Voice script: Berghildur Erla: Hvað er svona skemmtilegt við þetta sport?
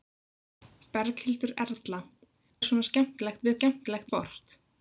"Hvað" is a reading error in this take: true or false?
true